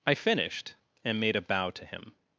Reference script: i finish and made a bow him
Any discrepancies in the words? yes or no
yes